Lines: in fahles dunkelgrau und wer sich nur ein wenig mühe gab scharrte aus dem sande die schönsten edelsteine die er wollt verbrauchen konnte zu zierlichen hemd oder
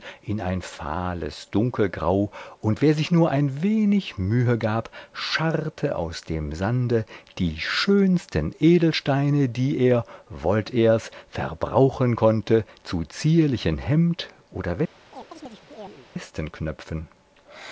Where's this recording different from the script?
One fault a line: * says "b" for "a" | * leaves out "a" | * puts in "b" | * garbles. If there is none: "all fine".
* puts in "ein"
* puts in "er's"